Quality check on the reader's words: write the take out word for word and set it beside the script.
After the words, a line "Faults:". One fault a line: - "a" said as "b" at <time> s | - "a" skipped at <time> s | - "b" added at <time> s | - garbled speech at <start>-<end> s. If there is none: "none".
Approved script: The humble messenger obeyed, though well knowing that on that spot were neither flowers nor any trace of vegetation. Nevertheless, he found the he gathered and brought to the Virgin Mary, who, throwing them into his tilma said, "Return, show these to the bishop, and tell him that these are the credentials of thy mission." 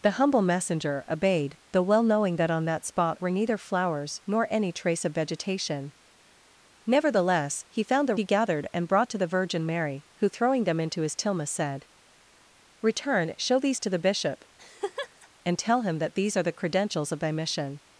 The humble messenger obeyed, though well knowing that on that spot were neither flowers nor any trace of vegetation. Nevertheless, he found the he gathered and brought to the Virgin Mary, who, throwing them into his tilma said, "Return, show these to the bishop, and tell him that these are the credentials of thy mission."
Faults:
none